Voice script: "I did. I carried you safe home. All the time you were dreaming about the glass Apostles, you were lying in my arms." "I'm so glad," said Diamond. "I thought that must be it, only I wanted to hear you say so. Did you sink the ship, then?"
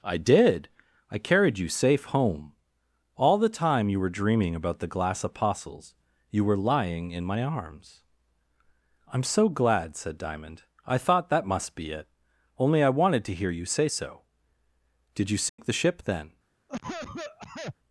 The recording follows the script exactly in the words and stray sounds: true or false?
false